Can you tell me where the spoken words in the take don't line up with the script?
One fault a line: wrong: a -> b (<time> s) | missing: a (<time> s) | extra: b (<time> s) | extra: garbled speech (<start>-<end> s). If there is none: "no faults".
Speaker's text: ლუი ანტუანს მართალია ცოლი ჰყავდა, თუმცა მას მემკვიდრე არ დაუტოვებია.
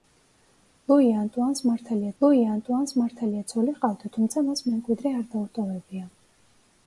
extra: ლუი ანტუანს მართალია (2.2 s)